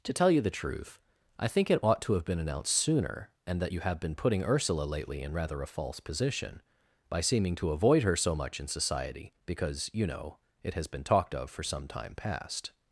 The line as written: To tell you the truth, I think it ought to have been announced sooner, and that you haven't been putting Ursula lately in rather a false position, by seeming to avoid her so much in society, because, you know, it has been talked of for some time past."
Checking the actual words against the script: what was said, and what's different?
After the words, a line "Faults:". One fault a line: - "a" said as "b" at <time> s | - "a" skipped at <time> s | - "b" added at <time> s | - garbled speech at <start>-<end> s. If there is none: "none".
To tell you the truth, I think it ought to have been announced sooner, and that you have been putting Ursula lately in rather a false position, by seeming to avoid her so much in society, because, you know, it has been talked of for some time past."
Faults:
- "haven't" said as "have" at 3.8 s